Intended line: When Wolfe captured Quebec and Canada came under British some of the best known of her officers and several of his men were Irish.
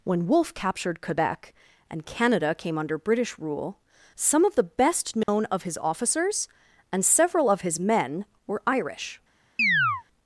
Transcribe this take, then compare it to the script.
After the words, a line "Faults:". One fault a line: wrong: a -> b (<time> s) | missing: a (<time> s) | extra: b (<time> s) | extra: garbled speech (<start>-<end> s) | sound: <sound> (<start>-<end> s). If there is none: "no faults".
When Wolfe captured Quebec and Canada came under British rule, some of the best known of his officers and several of his men were Irish.
Faults:
extra: rule (3.4 s)
sound: dropout (5.2-5.3 s)
wrong: her -> his (5.6 s)
sound: chirp (9.6-10.0 s)